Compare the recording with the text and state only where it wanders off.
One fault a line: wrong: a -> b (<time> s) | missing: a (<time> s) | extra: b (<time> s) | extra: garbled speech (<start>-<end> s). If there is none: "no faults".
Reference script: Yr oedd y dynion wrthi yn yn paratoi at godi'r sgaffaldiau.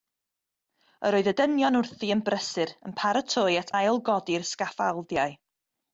extra: brysur (2.3 s)
extra: ail (3.8 s)